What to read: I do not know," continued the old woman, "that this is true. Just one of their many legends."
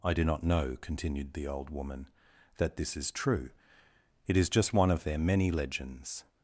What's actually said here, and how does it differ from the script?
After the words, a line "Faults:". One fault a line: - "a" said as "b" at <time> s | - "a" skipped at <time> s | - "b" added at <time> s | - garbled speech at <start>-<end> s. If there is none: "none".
I do not know," continued the old woman, "that this is true. It is just one of their many legends."
Faults:
- "It is" added at 4.3 s